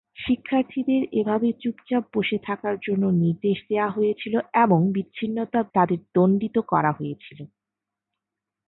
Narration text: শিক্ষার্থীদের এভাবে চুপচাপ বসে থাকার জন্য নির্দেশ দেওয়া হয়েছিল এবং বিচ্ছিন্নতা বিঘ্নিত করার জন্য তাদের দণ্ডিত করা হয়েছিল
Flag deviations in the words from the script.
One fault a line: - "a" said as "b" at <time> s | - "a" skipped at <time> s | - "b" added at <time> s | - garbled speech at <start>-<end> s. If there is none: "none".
- "বিঘ্নিত করার জন্য" skipped at 5.6 s